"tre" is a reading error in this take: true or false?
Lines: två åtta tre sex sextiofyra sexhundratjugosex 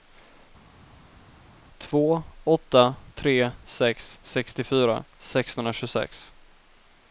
false